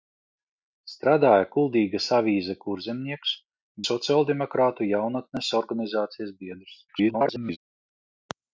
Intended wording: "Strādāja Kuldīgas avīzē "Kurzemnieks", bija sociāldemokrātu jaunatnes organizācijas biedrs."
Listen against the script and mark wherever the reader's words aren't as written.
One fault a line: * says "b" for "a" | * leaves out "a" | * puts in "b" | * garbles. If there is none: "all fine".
* leaves out "bija"
* garbles